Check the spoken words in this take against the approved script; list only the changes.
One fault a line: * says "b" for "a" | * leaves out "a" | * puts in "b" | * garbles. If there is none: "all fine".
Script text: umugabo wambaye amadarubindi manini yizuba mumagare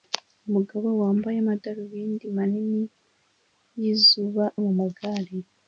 all fine